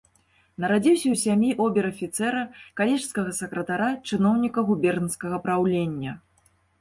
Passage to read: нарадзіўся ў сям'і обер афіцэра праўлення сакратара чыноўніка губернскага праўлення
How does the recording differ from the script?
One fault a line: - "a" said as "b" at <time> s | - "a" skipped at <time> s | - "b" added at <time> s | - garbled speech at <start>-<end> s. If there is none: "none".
- "праўлення" said as "калежскага" at 2.8 s